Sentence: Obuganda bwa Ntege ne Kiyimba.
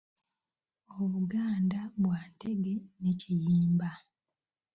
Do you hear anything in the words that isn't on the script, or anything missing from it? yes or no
no